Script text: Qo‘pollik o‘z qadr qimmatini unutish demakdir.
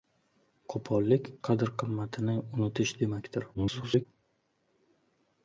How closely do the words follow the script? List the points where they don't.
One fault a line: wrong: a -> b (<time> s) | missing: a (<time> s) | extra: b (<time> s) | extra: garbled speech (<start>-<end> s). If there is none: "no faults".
missing: o‘z (1.3 s)
extra: garbled speech (3.5-4.1 s)